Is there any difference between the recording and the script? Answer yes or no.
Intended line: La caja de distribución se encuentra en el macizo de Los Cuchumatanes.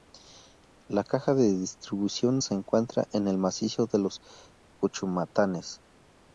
no